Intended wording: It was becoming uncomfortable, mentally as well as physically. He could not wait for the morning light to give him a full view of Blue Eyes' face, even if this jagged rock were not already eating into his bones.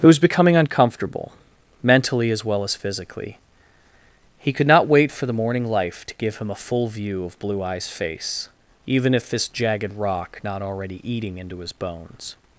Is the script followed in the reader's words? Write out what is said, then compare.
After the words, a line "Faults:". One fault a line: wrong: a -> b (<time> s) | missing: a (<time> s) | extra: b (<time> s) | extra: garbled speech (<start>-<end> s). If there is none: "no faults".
It was becoming uncomfortable, mentally as well as physically. He could not wait for the morning life to give him a full view of Blue Eyes' face, even if this jagged rock not already eating into his bones.
Faults:
wrong: light -> life (5.7 s)
missing: were (10.4 s)